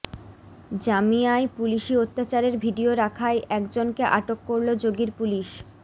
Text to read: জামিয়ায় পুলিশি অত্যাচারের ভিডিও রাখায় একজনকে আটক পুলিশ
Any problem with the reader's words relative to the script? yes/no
yes